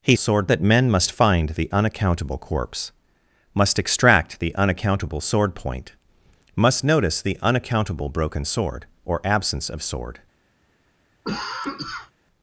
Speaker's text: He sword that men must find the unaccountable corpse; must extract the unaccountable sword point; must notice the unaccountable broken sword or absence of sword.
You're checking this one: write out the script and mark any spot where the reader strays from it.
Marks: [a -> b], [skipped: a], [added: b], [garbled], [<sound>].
He sword that men must find the unaccountable corpse; must extract the unaccountable sword point; must notice the unaccountable broken sword or absence of sword. [cough]